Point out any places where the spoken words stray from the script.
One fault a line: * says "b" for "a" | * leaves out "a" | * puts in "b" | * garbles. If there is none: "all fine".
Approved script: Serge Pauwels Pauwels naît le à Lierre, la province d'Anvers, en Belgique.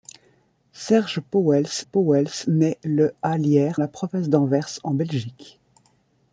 all fine